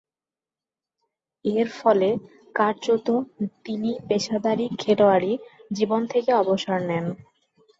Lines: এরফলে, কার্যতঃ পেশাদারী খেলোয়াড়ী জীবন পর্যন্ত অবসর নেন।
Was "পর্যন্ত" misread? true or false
true